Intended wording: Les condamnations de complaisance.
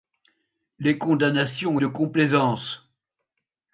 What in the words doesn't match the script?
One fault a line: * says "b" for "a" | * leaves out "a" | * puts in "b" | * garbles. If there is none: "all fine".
all fine